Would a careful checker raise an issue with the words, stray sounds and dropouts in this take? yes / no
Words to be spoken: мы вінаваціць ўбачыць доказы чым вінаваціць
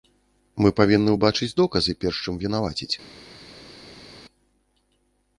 yes